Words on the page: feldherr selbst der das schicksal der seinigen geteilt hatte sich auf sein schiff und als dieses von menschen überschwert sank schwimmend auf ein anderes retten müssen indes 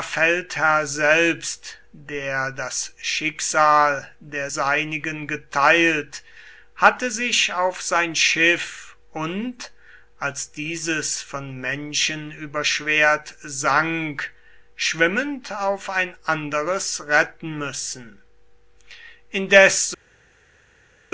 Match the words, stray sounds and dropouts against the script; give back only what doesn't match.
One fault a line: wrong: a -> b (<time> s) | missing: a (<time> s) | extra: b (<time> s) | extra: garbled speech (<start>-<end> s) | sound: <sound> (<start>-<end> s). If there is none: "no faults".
no faults